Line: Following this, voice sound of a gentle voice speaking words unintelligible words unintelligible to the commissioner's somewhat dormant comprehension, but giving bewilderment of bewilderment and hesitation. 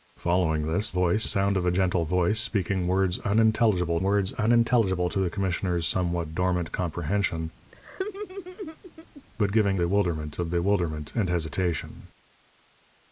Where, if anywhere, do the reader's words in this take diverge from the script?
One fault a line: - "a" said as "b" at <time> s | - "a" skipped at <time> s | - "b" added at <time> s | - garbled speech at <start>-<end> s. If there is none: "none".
none